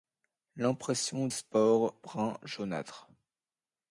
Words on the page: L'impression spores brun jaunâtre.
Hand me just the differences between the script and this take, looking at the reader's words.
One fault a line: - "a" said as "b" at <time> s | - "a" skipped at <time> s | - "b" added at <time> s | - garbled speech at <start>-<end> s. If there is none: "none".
none